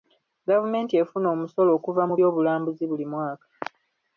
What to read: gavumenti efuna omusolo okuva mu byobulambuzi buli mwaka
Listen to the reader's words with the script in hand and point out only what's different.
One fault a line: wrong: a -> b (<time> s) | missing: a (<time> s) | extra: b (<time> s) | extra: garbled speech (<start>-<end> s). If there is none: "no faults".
no faults